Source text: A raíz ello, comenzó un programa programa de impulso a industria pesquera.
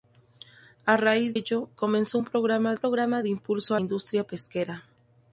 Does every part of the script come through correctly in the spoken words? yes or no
yes